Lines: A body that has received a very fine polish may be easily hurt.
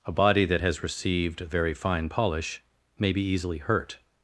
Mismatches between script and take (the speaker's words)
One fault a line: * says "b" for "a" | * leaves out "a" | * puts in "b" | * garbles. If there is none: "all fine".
* leaves out "a"